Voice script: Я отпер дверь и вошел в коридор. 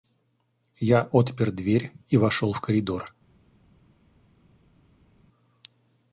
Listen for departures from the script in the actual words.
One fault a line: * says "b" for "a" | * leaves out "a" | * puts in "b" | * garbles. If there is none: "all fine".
all fine